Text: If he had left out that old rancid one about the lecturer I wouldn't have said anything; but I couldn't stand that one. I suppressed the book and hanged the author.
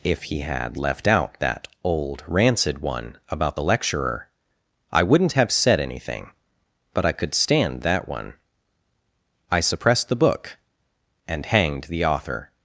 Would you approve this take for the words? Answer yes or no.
no